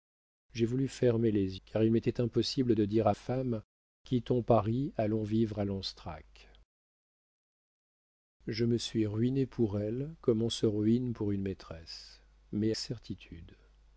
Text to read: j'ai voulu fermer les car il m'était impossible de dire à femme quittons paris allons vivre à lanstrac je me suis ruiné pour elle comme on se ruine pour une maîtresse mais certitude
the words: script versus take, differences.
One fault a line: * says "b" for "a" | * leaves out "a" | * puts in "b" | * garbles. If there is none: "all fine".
all fine